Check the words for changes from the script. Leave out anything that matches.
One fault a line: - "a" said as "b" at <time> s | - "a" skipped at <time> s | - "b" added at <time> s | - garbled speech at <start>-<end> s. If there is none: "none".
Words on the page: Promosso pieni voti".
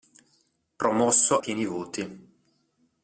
none